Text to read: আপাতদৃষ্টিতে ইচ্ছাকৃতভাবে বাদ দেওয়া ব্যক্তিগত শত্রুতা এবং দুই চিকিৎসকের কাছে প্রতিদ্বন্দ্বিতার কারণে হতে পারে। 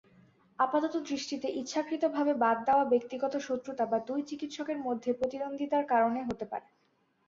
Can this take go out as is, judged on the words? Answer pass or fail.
fail